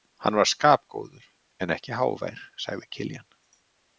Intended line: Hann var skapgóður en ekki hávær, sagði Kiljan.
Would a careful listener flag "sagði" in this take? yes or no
no